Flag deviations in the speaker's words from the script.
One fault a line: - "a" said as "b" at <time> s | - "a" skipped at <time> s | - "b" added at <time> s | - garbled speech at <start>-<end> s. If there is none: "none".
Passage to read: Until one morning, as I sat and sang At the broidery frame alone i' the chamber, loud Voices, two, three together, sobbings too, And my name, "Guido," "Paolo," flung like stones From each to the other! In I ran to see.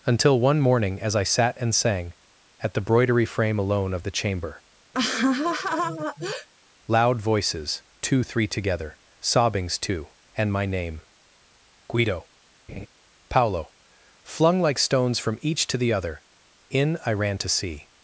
- "i" said as "of" at 3.9 s